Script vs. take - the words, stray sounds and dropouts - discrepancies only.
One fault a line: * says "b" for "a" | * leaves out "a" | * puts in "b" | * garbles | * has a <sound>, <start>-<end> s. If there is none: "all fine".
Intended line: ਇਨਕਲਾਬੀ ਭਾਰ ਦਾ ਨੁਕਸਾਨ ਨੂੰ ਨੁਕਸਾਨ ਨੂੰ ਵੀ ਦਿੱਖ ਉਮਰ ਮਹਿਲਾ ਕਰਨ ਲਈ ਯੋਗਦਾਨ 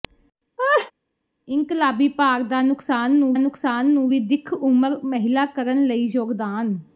* has a laugh, 0.6-0.9 s